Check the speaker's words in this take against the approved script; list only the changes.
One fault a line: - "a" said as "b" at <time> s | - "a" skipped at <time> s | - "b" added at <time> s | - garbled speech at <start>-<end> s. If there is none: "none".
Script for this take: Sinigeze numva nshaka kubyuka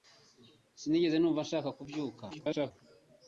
- garbled speech at 2.3-2.7 s